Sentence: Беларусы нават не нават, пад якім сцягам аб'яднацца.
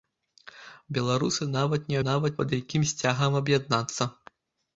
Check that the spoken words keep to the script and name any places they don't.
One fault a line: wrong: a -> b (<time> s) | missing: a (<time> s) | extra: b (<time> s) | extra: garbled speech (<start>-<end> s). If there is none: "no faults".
no faults